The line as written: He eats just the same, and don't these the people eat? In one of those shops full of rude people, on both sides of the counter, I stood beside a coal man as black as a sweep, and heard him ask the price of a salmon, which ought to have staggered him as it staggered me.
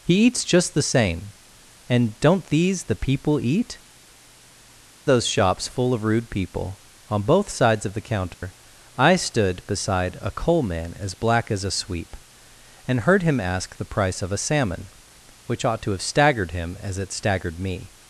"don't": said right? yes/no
yes